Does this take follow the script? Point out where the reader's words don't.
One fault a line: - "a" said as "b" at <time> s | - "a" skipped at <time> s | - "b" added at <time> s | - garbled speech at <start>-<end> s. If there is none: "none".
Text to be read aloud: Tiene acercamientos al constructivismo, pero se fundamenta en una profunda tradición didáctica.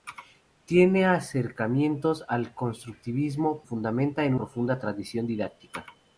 - "pero se" skipped at 3.6 s
- "una" skipped at 4.3 s